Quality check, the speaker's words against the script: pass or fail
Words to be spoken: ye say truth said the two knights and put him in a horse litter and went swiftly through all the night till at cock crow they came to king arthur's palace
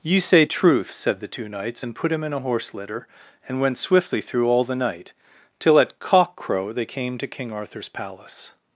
pass